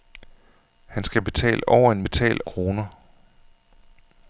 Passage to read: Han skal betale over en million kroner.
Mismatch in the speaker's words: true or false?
true